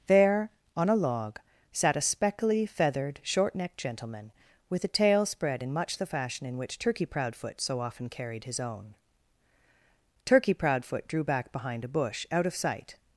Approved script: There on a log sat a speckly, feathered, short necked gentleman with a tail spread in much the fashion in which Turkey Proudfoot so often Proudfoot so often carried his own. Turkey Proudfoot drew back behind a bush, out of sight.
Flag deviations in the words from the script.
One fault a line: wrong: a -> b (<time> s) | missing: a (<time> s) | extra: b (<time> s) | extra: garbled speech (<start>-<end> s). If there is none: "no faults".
missing: Proudfoot so often (8.1 s)